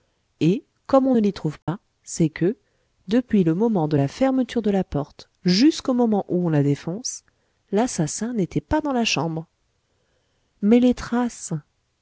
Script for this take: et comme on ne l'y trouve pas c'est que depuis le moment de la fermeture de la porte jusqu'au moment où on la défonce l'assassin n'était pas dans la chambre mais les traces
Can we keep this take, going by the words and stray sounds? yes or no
no